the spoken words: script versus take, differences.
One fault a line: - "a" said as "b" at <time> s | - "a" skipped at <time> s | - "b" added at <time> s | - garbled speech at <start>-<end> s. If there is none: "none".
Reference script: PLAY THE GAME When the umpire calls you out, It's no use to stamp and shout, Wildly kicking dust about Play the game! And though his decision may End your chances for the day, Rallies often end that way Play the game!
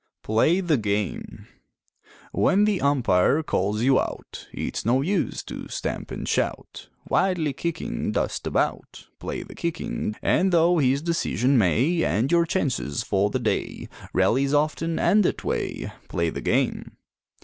- "game" said as "kicking" at 9.5 s